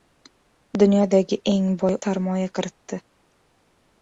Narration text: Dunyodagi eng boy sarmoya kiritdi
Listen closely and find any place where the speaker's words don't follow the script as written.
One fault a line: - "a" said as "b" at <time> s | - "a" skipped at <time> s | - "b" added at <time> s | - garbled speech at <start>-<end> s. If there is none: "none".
none